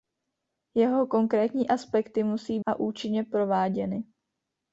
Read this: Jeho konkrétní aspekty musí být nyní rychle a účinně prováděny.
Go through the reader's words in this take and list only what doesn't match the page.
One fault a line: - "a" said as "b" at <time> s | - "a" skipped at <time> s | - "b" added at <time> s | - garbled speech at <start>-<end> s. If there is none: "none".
- "být nyní rychle" skipped at 2.6 s